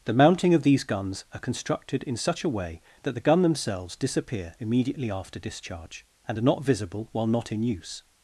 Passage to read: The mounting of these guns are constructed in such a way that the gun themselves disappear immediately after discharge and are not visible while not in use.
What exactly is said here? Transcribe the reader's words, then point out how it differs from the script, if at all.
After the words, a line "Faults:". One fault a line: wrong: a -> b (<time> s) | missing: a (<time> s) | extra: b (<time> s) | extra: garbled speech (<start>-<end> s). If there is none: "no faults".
The mounting of these guns are constructed in such a way that the gun themselves disappear immediately after discharge and are not visible while not in use.
Faults:
no faults